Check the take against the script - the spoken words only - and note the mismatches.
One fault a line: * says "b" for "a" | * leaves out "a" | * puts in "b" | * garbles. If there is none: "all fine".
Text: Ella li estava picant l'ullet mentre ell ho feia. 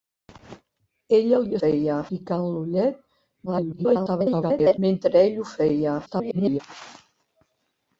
* says "feia" for "estava"
* garbles
* garbles